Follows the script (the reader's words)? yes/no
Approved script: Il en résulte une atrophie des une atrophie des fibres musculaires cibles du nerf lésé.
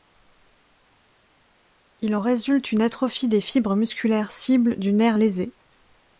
no